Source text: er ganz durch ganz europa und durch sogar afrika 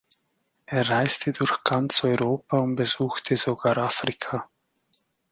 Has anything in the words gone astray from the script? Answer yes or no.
yes